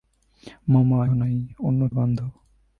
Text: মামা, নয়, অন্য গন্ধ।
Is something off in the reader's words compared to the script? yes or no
no